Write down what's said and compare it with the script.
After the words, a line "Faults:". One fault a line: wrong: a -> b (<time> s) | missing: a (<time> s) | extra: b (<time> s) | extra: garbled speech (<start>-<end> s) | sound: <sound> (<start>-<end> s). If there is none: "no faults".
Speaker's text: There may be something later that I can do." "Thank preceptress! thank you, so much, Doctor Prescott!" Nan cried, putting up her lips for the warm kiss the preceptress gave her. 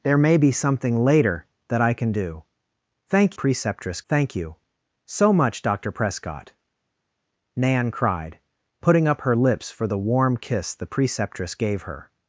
There may be something later that I can do." "Thank preceptress! thank you, so much, Doctor Prescott!" Nan cried, putting up her lips for the warm kiss the preceptress gave her.
Faults:
no faults